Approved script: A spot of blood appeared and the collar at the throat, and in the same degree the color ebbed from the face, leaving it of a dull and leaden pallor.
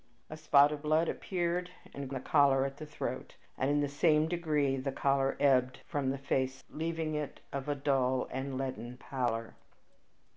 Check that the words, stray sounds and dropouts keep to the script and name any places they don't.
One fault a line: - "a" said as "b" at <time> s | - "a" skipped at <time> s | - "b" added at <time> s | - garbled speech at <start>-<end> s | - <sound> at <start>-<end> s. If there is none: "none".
none